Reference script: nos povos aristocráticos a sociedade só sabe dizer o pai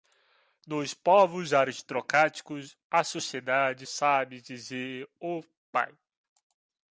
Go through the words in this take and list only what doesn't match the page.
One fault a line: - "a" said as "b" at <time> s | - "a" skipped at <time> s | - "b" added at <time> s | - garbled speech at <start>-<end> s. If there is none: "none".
- "só" skipped at 3.9 s